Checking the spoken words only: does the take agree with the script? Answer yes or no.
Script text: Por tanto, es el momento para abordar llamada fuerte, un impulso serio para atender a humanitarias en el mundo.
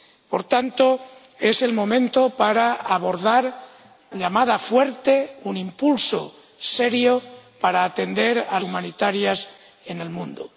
yes